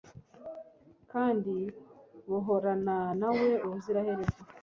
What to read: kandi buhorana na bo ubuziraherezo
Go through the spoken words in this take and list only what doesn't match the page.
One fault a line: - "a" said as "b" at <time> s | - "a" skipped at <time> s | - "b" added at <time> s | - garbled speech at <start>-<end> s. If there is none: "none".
- "bo" said as "we" at 3.4 s